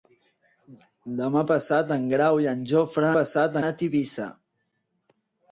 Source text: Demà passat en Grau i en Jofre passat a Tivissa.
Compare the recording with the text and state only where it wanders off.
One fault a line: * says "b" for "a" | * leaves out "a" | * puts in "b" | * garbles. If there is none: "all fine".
all fine